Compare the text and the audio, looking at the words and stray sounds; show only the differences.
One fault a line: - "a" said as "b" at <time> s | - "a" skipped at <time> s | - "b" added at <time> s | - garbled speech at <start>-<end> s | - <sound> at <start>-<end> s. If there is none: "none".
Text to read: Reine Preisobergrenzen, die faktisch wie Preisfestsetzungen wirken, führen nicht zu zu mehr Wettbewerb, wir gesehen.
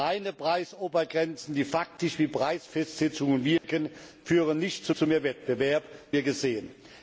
- dropout at 3.6-3.6 s